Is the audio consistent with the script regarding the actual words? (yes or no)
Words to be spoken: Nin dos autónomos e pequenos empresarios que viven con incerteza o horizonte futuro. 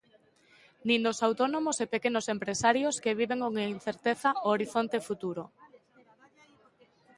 yes